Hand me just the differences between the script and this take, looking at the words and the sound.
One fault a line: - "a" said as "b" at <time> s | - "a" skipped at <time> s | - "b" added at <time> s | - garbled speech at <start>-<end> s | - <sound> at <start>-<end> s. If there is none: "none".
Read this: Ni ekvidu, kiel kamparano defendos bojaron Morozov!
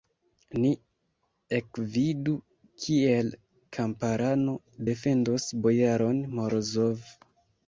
none